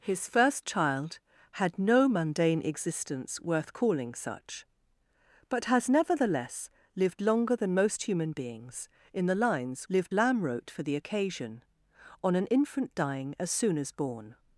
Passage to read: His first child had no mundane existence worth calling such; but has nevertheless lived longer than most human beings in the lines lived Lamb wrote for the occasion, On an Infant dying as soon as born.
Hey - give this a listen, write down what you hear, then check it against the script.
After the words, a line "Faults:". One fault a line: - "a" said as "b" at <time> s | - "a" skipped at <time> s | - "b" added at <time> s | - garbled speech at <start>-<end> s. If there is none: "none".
His first child had no mundane existence worth calling such; but has nevertheless lived longer than most human beings in the lines lived Lamb wrote for the occasion, On an Infant dying as soon as born.
Faults:
none